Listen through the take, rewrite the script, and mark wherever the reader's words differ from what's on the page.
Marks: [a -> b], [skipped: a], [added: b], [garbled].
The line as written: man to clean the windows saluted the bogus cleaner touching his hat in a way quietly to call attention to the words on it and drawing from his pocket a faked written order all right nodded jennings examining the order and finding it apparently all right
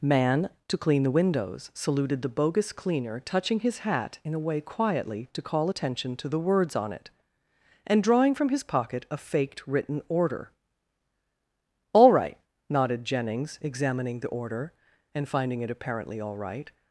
man to clean the windows saluted the bogus cleaner touching his hat in a way quietly to call attention to the words on it and drawing from his pocket a faked written order all right nodded jennings examining the order and finding it apparently all right